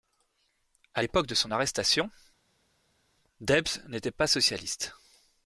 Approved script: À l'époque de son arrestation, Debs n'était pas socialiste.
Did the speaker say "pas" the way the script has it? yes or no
yes